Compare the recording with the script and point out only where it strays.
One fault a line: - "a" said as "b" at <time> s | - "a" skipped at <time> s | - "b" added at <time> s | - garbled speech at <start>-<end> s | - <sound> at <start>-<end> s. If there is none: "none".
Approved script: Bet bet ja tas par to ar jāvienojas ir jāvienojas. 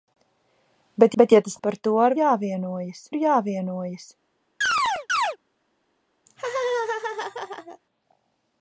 - chirp at 4.6-5.4 s
- laugh at 6.3-7.8 s